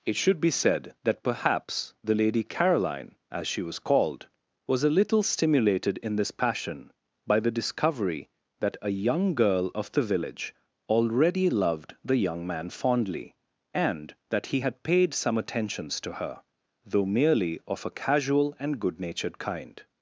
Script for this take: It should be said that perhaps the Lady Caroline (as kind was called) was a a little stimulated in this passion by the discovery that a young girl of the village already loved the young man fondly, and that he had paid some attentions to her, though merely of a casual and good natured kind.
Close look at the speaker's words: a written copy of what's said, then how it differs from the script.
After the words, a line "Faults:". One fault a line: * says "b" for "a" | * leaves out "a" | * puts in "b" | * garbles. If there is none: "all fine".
It should be said that perhaps the Lady Caroline (as she was called) was a little stimulated in this passion by the discovery that a young girl of the village already loved the young man fondly, and that he had paid some attentions to her, though merely of a casual and good natured kind.
Faults:
* says "she" for "kind"
* leaves out "a"